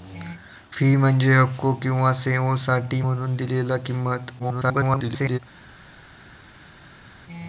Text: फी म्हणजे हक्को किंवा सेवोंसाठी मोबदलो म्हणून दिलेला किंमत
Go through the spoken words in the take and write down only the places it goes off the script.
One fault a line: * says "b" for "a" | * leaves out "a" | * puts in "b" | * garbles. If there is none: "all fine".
* leaves out "मोबदलो"
* garbles